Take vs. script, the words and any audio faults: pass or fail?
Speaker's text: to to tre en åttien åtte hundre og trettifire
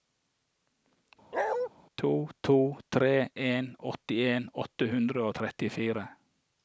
fail